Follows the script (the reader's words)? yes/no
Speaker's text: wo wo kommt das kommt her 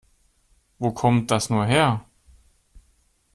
no